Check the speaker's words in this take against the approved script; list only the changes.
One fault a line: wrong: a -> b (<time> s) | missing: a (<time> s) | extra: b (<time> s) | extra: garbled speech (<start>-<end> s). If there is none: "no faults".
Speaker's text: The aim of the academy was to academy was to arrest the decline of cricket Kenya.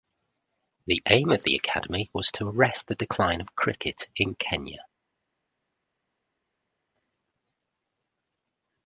missing: academy was to (2.5 s)
extra: in (4.2 s)